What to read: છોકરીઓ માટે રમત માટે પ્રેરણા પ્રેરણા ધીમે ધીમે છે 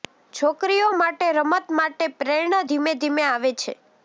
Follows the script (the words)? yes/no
no